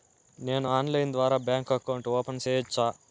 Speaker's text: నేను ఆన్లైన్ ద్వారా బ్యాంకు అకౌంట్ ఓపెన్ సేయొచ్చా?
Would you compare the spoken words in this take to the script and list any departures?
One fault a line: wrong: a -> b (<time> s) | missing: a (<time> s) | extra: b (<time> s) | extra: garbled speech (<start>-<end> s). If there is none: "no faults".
no faults